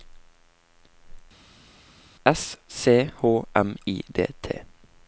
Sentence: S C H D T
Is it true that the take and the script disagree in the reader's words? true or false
true